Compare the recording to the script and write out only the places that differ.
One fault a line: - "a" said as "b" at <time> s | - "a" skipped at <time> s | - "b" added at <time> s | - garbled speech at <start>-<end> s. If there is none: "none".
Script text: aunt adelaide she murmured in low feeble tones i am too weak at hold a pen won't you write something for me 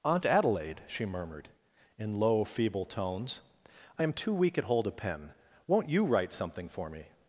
none